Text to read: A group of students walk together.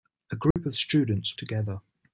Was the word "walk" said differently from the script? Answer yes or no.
yes